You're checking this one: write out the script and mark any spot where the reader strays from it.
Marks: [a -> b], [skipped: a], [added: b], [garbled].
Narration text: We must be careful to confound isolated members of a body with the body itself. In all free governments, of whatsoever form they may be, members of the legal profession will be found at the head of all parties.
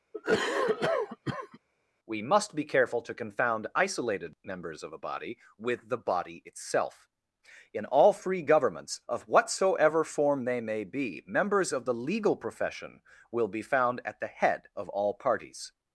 We must be careful to confound isolated members of a body with the body itself. In all free governments, of whatsoever form they may be, members of the legal profession will be found at the head of all parties.